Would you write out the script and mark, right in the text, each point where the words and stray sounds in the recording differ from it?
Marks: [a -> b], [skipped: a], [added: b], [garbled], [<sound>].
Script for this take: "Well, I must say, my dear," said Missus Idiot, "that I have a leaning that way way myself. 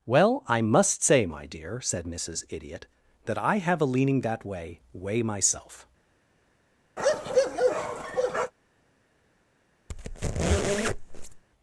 "Well, I must say, my dear," said Missus Idiot, "that I have a leaning that way way myself. [bark] [squeak]